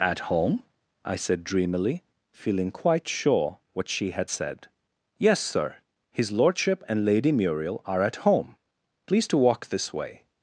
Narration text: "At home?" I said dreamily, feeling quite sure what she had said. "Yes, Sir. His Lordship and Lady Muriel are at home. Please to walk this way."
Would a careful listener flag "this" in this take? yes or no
no